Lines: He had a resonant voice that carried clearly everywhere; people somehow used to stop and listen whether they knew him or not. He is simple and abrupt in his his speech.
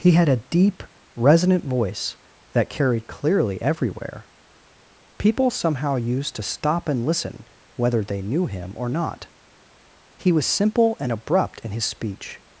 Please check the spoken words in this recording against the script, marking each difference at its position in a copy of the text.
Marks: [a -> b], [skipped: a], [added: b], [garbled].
He had a [added: deep] resonant voice that carried clearly everywhere; people somehow used to stop and listen whether they knew him or not. He [is -> was] simple and abrupt in his [skipped: his] speech.